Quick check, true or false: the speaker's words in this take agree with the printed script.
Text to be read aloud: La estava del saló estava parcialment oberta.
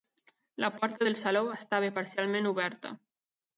false